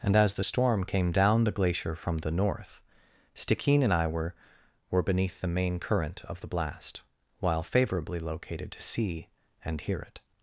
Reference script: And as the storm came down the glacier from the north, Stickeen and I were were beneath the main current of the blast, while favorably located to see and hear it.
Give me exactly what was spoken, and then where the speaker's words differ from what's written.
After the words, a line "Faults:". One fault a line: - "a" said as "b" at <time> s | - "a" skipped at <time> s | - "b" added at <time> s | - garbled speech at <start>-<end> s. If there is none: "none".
And as the storm came down the glacier from the north, Stickeen and I were were beneath the main current of the blast, while favorably located to see and hear it.
Faults:
none